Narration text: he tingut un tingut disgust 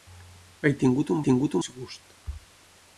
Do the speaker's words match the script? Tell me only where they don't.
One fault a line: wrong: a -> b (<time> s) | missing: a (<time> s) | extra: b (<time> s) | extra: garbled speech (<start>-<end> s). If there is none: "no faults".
no faults